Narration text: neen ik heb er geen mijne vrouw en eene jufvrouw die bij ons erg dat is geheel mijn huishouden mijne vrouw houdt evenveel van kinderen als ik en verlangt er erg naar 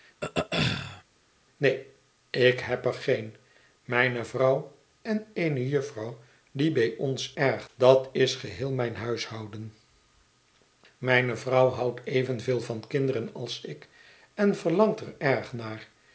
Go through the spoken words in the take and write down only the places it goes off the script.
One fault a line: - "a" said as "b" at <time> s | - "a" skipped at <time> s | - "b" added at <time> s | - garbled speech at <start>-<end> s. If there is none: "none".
none